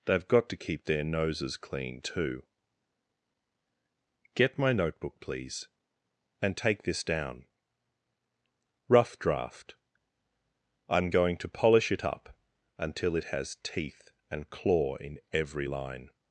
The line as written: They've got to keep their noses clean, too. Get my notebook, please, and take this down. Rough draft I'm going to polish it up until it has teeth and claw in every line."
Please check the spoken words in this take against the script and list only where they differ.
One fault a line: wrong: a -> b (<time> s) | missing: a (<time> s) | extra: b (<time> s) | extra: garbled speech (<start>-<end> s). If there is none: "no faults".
no faults